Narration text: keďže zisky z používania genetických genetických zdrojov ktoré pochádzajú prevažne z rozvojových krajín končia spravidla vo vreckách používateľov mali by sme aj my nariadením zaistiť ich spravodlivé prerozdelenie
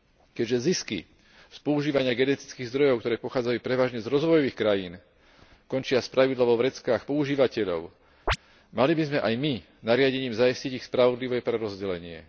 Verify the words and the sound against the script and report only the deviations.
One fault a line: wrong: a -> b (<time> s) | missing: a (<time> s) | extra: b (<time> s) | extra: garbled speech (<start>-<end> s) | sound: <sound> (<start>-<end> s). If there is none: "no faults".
missing: genetických (2.7 s)
sound: chirp (8.3-8.4 s)